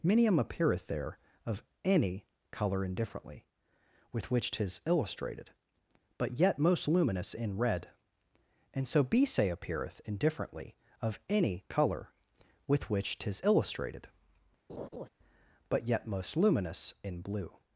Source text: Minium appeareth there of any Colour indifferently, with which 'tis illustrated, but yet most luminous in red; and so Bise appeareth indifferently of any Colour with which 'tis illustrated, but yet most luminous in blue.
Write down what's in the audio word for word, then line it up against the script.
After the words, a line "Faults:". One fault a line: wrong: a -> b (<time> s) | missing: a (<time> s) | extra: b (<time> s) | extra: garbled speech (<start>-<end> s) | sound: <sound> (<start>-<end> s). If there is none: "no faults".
Minium appeareth there of any Colour indifferently, with which 'tis illustrated, but yet most luminous in red; and so Bise appeareth indifferently of any Colour with which 'tis illustrated, but yet most luminous in blue.
Faults:
sound: laugh (14.7-15.1 s)